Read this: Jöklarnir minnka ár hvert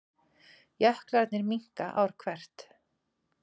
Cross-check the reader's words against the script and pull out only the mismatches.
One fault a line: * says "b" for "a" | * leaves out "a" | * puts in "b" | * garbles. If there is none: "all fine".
all fine